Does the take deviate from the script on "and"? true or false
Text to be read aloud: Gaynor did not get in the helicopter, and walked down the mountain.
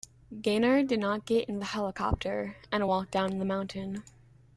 false